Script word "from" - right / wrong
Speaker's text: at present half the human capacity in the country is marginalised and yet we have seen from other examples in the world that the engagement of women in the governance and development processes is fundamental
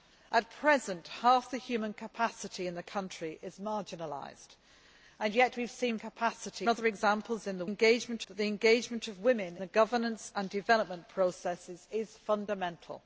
wrong